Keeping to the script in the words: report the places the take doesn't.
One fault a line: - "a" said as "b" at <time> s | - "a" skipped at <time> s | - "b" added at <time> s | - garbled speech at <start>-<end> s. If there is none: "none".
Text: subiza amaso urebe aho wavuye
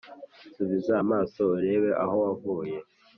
none